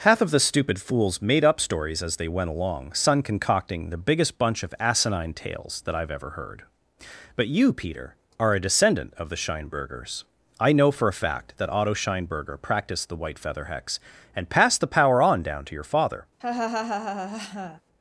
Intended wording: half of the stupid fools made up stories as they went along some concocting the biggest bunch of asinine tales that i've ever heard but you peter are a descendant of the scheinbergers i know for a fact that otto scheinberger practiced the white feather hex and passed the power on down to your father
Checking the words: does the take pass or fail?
fail